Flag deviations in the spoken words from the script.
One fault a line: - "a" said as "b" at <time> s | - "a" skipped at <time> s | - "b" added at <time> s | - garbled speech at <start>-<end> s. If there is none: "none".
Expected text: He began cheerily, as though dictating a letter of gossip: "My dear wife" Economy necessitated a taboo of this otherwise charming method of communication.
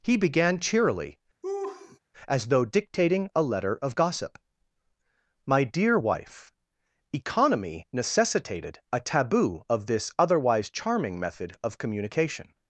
none